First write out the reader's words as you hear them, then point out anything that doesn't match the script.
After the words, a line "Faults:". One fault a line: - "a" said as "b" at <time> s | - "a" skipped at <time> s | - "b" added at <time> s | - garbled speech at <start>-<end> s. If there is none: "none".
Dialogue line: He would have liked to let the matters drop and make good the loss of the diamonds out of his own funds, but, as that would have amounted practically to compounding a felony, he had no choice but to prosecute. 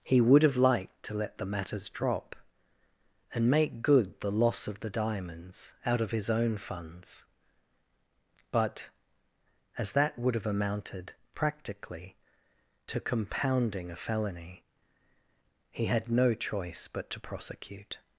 He would have liked to let the matters drop and make good the loss of the diamonds out of his own funds, but, as that would have amounted practically to compounding a felony, he had no choice but to prosecute.
Faults:
none